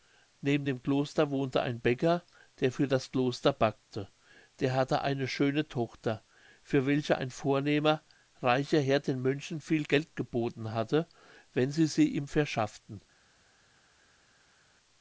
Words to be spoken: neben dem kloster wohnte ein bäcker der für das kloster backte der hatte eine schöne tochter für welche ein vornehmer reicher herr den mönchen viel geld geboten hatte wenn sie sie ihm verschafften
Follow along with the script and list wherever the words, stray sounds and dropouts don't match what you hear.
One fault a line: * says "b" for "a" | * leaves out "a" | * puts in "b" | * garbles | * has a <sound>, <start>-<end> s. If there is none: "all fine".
all fine